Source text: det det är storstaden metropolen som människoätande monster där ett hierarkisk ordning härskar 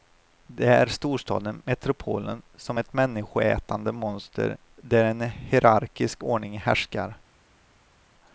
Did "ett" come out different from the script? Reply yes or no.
yes